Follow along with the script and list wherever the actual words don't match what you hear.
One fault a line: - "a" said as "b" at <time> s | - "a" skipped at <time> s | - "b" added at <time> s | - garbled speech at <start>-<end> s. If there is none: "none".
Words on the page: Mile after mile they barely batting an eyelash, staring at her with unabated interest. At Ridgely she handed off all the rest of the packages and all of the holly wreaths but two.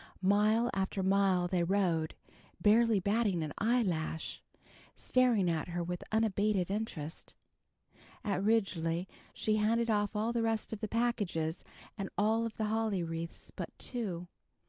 - "rode" added at 1.6 s